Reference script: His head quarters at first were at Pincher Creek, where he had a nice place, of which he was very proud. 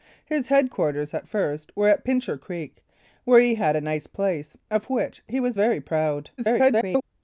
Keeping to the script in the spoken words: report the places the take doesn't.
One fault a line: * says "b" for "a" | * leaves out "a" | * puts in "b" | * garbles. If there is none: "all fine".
* garbles